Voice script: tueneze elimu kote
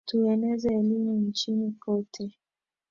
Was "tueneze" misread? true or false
false